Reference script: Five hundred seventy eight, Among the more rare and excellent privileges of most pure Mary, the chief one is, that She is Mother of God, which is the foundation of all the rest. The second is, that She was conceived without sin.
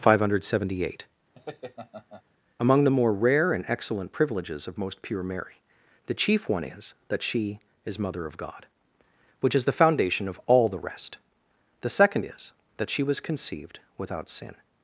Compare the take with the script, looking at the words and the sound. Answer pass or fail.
fail